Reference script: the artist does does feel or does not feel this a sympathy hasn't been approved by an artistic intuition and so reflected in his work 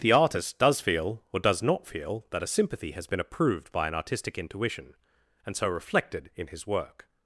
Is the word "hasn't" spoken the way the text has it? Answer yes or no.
no